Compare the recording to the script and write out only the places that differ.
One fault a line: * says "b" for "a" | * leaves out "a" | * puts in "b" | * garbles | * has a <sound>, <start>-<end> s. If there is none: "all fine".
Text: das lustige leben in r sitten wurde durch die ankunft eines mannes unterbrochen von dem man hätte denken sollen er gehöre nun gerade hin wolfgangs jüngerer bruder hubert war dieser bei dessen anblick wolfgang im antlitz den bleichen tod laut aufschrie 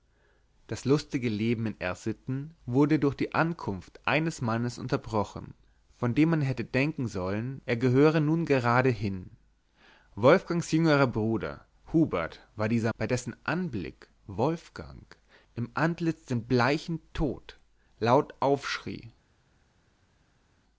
all fine